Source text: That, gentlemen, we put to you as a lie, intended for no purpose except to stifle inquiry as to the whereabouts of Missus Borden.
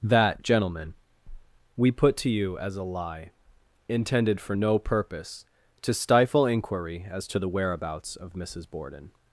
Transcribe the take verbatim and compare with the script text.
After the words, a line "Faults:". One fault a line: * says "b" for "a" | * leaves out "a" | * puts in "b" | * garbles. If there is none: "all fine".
That, gentlemen, we put to you as a lie, intended for no purpose to stifle inquiry as to the whereabouts of Missus Borden.
Faults:
* leaves out "except"